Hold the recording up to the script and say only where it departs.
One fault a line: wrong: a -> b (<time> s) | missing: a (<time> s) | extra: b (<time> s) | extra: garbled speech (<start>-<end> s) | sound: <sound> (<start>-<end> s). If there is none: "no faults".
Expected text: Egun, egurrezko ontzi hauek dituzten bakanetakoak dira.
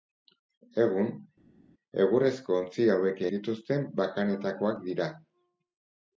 no faults